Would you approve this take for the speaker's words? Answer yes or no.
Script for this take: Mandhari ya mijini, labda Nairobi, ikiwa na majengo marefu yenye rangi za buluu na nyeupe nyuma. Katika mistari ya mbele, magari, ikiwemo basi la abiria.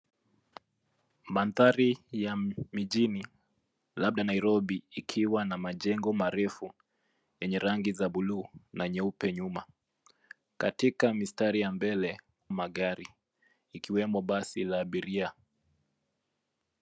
yes